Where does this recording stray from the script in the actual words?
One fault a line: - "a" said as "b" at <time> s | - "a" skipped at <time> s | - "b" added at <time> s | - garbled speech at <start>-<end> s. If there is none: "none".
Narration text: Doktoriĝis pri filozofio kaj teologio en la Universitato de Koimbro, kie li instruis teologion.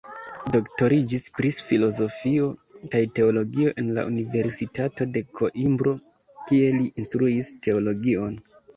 none